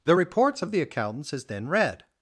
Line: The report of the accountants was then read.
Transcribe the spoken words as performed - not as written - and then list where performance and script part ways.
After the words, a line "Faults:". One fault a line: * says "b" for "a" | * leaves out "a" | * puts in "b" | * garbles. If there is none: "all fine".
The reports of the accountants is then read.
Faults:
* says "reports" for "report"
* says "is" for "was"